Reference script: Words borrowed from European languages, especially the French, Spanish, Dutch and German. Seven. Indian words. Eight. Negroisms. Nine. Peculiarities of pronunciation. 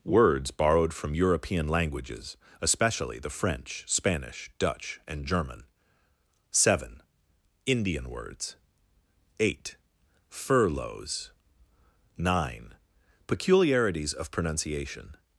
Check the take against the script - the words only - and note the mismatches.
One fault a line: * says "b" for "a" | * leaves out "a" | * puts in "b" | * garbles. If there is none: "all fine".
* says "Furloughs" for "Negroisms"